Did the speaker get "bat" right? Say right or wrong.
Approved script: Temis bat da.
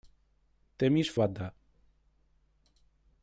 right